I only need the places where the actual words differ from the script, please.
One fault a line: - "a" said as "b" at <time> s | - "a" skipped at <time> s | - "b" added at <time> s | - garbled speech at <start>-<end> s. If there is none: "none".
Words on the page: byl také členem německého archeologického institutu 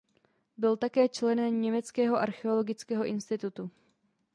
none